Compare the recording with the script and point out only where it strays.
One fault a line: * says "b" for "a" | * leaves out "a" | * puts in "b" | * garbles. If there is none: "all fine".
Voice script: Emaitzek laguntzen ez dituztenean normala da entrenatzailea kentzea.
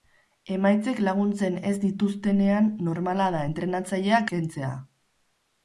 all fine